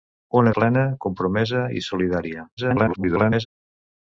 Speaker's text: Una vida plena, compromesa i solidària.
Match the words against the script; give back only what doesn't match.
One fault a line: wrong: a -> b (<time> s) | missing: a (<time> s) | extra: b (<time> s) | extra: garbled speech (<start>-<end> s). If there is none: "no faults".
missing: vida (0.5 s)
extra: garbled speech (2.6-3.5 s)